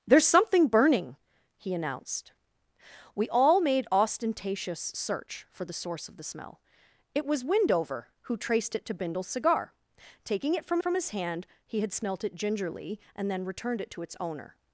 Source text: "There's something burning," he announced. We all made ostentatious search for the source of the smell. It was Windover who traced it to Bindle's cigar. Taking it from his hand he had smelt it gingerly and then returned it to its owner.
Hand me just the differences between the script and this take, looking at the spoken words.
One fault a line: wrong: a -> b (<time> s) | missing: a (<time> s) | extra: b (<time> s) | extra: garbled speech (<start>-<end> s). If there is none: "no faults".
extra: from (10.8 s)